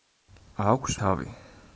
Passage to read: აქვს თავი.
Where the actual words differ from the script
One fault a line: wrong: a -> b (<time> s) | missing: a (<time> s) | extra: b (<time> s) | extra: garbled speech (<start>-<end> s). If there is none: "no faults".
no faults